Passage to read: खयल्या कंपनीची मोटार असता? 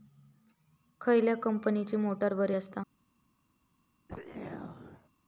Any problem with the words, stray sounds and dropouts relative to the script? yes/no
yes